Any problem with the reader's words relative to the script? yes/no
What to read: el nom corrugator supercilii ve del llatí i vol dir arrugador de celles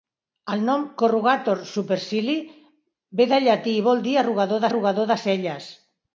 yes